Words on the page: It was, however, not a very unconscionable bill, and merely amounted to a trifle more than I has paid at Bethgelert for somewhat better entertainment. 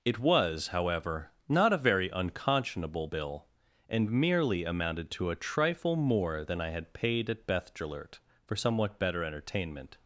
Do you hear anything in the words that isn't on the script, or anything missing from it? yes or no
yes